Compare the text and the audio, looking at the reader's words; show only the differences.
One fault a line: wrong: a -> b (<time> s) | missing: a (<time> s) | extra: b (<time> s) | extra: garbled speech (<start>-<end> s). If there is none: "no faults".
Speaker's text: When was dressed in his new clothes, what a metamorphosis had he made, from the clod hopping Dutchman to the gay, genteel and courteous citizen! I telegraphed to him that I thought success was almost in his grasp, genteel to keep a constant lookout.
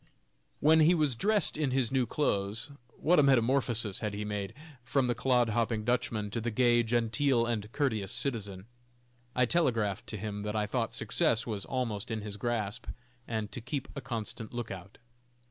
extra: he (0.8 s)
wrong: genteel -> and (13.3 s)